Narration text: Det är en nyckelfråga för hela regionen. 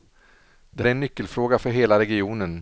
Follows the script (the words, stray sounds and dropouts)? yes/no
yes